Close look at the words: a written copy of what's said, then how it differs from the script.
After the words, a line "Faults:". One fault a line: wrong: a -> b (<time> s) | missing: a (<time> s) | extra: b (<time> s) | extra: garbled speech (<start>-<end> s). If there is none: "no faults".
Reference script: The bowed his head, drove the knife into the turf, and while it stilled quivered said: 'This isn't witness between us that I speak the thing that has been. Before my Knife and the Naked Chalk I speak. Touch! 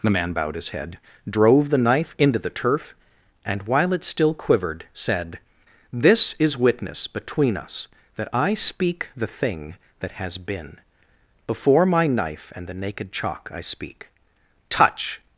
The man bowed his head, drove the knife into the turf, and while it still quivered said: 'This is witness between us that I speak the thing that has been. Before my Knife and the Naked Chalk I speak. Touch!
Faults:
extra: man (0.1 s)
wrong: stilled -> still (4.0 s)
wrong: isn't -> is (6.4 s)